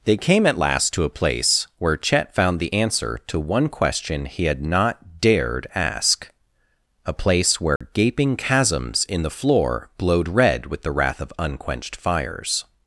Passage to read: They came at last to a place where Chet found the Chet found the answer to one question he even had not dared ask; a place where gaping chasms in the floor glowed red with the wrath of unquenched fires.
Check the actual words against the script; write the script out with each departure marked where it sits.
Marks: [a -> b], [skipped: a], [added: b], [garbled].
They came at last to a place where Chet found the [skipped: Chet found the] answer to one question he [skipped: even] had not dared ask; a place where gaping chasms in the floor glowed red with the wrath of unquenched fires.